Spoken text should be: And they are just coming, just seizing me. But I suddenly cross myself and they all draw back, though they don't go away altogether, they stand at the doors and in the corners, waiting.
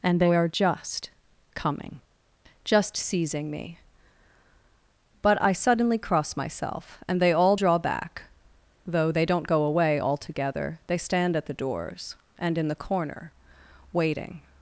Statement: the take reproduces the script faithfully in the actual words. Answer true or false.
false